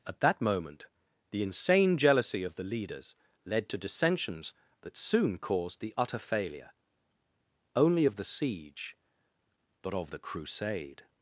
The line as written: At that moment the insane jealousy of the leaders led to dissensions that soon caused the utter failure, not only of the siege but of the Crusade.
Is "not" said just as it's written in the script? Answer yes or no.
no